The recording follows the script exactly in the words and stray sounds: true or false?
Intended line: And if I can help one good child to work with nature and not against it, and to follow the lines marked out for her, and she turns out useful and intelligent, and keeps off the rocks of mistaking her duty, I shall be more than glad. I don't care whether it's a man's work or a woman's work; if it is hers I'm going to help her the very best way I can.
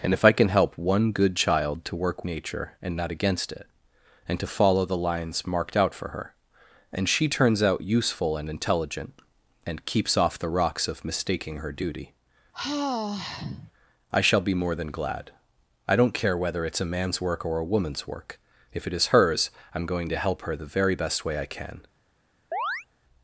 false